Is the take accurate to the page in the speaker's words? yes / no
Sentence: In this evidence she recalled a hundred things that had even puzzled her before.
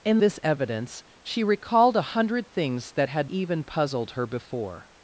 yes